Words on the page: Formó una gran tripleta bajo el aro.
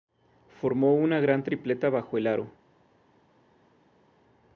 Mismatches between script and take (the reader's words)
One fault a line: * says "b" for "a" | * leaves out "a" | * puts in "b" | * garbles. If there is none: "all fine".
all fine